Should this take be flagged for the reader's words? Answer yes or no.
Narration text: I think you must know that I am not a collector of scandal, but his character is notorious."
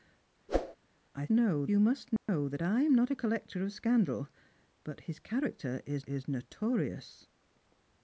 yes